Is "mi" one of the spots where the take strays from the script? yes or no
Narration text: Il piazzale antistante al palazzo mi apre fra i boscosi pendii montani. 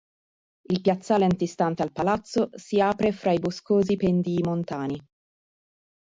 yes